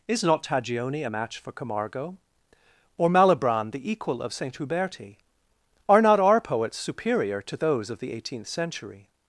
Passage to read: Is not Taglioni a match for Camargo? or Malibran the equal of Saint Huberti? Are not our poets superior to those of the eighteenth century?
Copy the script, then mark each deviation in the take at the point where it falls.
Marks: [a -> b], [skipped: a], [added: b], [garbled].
Is not Taglioni a match for Camargo? or Malibran the equal of Saint Huberti? Are not our poets superior to those of the eighteenth century?